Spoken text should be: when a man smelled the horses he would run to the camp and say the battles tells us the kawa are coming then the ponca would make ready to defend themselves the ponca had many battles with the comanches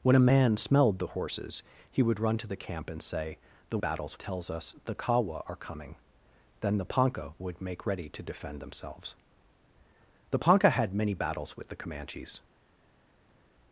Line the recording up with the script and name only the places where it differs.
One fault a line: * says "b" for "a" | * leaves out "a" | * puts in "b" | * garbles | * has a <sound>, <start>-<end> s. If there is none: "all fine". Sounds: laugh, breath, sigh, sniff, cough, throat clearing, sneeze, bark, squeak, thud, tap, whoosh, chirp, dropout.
all fine